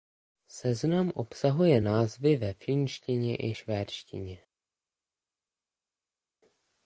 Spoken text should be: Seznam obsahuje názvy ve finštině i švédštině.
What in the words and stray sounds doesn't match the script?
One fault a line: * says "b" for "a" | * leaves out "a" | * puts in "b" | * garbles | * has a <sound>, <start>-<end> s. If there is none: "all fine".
all fine